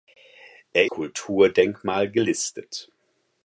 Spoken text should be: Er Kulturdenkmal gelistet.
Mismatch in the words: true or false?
false